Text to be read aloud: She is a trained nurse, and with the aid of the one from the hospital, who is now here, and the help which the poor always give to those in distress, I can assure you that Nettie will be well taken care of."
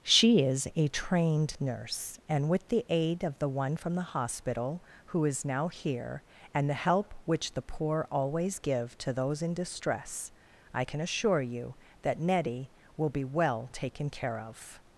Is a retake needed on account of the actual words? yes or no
no